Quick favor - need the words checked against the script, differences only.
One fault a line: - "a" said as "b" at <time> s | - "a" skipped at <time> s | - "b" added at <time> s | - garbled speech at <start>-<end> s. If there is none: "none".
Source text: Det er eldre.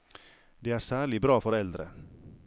- "særlig bra for" added at 0.8 s